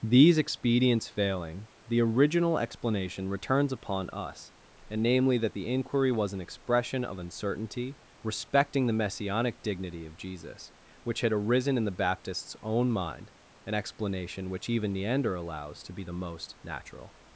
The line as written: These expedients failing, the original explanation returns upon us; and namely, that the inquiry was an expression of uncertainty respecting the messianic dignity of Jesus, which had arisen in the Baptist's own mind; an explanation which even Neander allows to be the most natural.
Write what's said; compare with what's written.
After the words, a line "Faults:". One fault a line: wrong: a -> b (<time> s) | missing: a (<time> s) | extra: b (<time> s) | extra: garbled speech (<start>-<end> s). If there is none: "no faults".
These expedients failing, the original explanation returns upon us; and namely, that the inquiry was an expression of uncertainty respecting the messianic dignity of Jesus, which had arisen in the Baptist's own mind; an explanation which even Neander allows to be the most natural.
Faults:
no faults